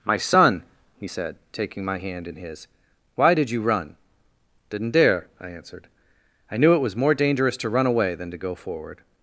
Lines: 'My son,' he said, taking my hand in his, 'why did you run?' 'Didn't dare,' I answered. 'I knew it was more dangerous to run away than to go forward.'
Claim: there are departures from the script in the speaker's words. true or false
false